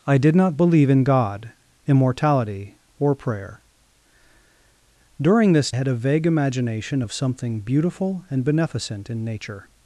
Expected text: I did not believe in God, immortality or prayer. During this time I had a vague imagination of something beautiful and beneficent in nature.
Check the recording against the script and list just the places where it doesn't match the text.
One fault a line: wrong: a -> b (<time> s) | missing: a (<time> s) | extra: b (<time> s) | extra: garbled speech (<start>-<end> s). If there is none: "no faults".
missing: time I (5.7 s)